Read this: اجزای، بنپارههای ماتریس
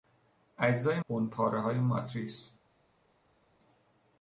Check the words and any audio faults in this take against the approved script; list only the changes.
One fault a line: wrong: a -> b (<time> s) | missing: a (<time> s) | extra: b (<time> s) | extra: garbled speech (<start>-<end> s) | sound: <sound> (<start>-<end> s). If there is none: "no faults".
no faults